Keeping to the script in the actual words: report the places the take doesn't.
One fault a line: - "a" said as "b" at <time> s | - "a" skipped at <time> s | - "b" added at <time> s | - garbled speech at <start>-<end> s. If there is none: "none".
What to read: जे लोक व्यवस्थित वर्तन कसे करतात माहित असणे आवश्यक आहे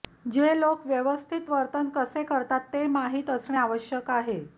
- "ते" added at 2.7 s